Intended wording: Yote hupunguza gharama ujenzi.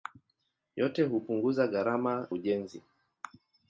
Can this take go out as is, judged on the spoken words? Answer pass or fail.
pass